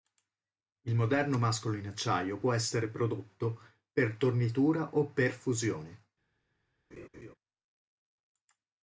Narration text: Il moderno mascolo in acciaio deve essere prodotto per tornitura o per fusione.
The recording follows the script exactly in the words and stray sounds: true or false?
false